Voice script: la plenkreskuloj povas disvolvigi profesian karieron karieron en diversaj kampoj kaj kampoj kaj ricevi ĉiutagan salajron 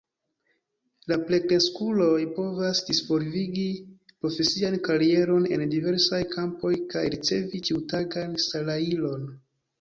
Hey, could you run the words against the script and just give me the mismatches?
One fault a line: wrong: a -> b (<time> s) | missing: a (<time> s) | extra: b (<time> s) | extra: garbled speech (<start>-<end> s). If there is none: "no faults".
missing: karieron (5.5 s)
missing: kampoj kaj (7.1 s)